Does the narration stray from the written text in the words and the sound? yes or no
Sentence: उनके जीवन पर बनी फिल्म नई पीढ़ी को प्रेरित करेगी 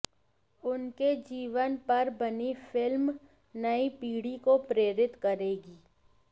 no